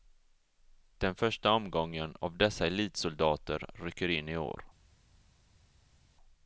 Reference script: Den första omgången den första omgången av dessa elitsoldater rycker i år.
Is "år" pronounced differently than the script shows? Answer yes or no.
no